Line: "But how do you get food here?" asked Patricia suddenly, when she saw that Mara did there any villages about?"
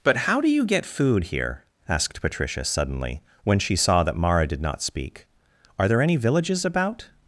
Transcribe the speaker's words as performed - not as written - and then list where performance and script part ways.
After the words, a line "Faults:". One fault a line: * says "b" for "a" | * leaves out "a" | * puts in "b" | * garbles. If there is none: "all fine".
"But how do you get food here?" asked Patricia suddenly, when she saw that Mara did not speak; "are there any villages about?"
Faults:
* puts in "not speak are"